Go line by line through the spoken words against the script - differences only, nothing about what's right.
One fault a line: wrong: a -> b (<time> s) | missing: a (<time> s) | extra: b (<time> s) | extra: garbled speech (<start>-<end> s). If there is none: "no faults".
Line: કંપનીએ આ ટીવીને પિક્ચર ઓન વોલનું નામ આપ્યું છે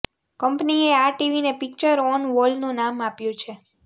no faults